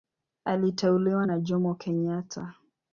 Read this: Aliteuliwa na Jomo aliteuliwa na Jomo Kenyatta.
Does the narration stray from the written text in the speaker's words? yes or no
yes